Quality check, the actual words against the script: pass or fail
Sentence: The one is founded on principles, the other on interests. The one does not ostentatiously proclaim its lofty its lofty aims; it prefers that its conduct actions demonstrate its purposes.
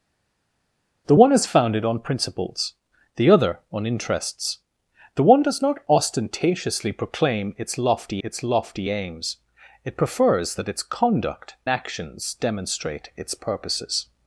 pass